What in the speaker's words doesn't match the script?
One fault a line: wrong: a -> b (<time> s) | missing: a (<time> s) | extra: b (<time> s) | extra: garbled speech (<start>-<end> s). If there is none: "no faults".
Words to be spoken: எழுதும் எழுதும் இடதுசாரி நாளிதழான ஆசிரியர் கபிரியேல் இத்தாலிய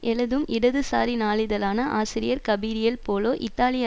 missing: எழுதும் (0.5 s)
extra: போலோ (3.1 s)